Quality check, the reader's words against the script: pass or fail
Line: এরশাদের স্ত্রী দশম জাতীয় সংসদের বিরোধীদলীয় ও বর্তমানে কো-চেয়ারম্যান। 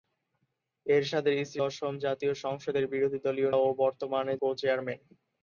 pass